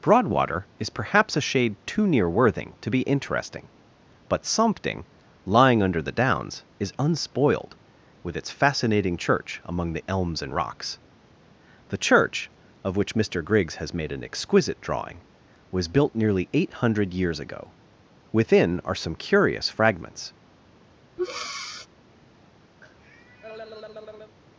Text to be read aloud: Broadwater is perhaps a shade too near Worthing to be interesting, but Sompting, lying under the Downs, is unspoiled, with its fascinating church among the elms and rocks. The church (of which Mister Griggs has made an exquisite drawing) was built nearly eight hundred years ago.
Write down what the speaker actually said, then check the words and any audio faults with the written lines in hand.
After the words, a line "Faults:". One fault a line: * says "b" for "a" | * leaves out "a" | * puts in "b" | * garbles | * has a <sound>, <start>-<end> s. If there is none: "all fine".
Broadwater is perhaps a shade too near Worthing to be interesting, but Sompting, lying under the Downs, is unspoiled, with its fascinating church among the elms and rocks. The church (of which Mister Griggs has made an exquisite drawing) was built nearly eight hundred years ago. Within are some curious fragments
Faults:
* puts in "Within are some curious fragments"
* has a breath, 21.2-21.9 s
* has a cough, 22.8-24.4 s